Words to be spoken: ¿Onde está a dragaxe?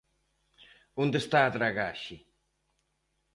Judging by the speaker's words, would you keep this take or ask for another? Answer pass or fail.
pass